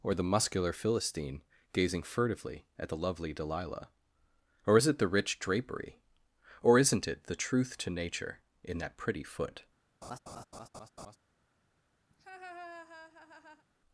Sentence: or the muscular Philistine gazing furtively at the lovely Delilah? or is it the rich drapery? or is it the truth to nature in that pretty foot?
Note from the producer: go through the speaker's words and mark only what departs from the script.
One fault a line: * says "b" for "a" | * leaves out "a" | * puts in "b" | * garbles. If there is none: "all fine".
* says "isn't" for "is"